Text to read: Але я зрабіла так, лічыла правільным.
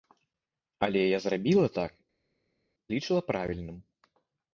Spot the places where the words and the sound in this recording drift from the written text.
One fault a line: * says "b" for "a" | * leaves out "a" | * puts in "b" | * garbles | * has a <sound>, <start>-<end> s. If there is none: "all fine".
all fine